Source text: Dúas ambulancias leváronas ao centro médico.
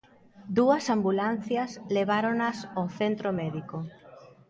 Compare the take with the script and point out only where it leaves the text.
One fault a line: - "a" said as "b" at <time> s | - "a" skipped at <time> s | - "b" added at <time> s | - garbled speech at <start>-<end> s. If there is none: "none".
none